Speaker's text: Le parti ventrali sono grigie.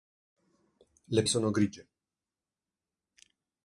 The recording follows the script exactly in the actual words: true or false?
false